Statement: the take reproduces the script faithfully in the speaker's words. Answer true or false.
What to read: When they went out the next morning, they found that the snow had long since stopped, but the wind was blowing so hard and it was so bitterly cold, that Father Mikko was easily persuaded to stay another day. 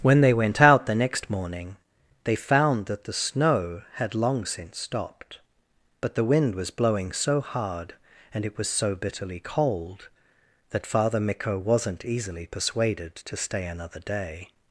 false